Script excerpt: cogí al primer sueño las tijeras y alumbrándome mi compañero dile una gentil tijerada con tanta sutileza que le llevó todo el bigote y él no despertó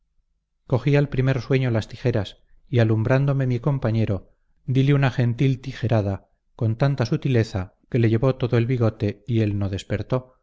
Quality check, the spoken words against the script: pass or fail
pass